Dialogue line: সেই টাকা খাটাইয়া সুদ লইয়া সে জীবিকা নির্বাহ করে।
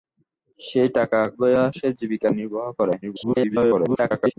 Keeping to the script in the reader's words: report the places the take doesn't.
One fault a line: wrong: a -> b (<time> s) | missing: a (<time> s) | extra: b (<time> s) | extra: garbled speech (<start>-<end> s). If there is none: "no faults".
missing: খাটাইয়া সুদ (1.2 s)
extra: garbled speech (3.0-4.3 s)